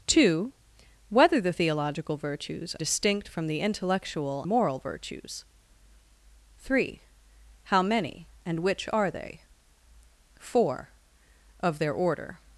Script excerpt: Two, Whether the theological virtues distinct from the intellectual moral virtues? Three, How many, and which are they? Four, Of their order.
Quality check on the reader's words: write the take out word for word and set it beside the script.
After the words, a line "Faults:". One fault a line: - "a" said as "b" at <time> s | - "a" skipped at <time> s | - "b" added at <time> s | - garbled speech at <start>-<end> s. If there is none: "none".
Two, Whether the theological virtues distinct from the intellectual moral virtues? Three, How many, and which are they? Four, Of their order.
Faults:
none